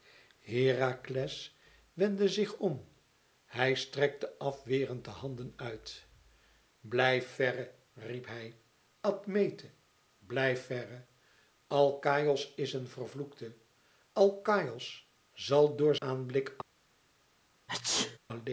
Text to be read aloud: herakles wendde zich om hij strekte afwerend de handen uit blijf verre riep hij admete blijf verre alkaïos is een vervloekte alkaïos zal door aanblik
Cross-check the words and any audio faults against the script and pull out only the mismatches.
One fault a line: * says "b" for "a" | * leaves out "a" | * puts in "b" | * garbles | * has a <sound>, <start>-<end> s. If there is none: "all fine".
* has a sneeze, 17.7-18.2 s